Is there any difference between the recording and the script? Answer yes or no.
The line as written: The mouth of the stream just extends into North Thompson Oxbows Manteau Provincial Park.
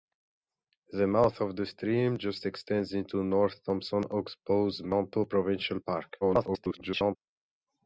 yes